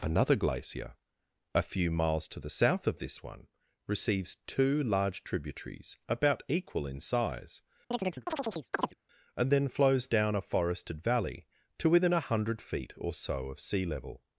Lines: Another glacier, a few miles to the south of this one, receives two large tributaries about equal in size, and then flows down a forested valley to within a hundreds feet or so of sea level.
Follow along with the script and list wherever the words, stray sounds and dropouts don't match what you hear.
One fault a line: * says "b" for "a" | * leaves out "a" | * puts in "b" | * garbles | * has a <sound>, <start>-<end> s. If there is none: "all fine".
* has a chirp, 7.9-9.0 s
* says "hundred" for "hundreds"